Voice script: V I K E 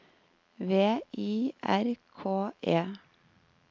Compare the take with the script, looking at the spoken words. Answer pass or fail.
fail